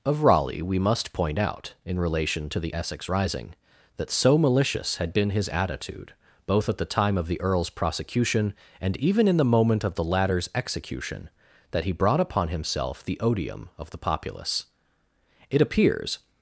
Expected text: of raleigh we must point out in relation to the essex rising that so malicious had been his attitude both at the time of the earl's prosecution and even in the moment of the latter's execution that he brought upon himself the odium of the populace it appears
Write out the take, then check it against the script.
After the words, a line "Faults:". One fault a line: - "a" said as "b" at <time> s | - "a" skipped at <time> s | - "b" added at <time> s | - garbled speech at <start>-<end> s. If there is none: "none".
of raleigh we must point out in relation to the essex rising that so malicious had been his attitude both at the time of the earl's prosecution and even in the moment of the latter's execution that he brought upon himself the odium of the populace it appears
Faults:
none